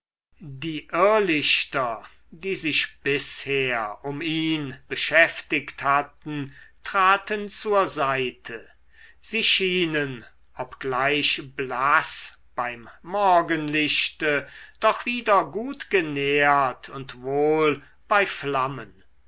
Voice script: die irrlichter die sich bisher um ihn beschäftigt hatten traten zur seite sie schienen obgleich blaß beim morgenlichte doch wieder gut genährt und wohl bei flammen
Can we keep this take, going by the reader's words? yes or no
yes